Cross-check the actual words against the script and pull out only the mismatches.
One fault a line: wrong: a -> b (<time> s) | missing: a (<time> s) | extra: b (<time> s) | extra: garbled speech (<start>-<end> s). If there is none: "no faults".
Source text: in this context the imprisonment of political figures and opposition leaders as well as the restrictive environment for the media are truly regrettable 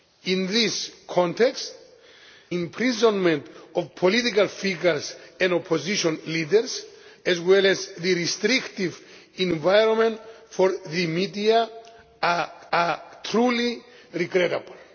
missing: the (1.7 s)
extra: are (12.7 s)